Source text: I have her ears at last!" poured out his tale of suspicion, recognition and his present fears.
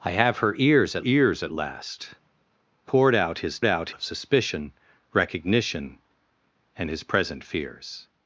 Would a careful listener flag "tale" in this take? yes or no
yes